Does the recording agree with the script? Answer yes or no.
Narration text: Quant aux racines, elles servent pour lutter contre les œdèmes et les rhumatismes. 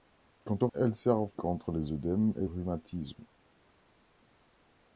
no